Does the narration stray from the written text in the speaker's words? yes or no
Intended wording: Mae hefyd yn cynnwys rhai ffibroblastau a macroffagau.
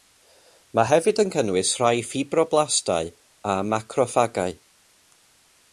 no